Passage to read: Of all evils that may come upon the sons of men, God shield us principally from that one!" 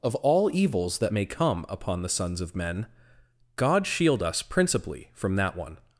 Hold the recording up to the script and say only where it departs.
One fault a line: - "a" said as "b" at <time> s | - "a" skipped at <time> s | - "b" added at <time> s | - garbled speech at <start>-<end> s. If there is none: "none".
none